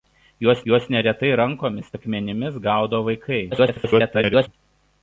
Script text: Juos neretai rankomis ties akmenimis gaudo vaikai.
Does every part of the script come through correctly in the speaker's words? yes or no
no